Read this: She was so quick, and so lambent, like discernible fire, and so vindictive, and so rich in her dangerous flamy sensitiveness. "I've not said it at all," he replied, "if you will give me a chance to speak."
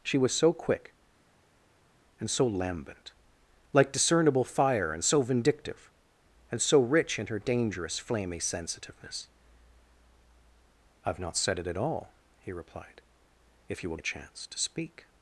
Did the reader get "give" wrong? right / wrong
wrong